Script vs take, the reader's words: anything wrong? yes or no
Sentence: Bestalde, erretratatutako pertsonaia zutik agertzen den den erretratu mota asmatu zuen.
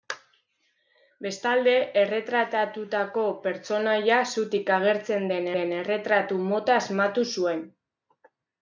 no